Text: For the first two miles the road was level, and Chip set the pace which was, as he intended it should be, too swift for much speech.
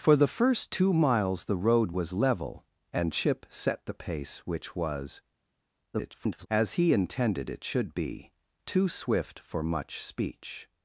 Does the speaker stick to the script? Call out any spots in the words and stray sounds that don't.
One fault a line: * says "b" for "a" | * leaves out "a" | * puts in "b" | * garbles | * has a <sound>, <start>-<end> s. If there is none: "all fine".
* garbles